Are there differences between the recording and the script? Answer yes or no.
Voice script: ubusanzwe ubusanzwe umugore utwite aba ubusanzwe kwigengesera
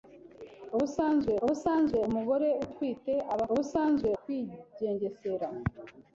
no